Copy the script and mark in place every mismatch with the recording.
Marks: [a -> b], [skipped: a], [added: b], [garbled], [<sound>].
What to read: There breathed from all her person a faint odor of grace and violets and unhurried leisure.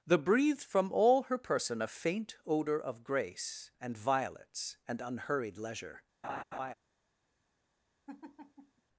There breathed from all her person a faint odor of grace and violets and unhurried leisure. [laugh] [laugh]